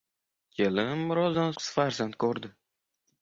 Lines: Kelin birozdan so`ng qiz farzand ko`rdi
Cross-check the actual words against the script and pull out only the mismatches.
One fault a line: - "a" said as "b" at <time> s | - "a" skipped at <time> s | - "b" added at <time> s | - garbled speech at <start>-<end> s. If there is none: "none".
- "so`ng" skipped at 1.5 s